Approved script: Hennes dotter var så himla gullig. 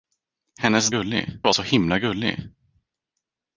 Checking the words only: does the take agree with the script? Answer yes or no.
no